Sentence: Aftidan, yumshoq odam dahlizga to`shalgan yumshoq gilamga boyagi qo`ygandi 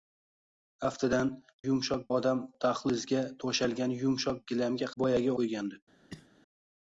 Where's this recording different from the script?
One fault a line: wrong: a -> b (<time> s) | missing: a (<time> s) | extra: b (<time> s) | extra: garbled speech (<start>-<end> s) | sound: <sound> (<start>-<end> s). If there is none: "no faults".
sound: cough (6.1-6.3 s)